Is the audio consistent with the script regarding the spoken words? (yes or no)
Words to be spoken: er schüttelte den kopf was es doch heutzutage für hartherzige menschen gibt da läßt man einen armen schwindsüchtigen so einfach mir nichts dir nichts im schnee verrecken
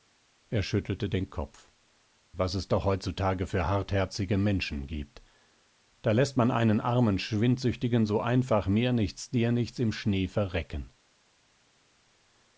yes